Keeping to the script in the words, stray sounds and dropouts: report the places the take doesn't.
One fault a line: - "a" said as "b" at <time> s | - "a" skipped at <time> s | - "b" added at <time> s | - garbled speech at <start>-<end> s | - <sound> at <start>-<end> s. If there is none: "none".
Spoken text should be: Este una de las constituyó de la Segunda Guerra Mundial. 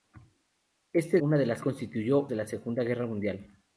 none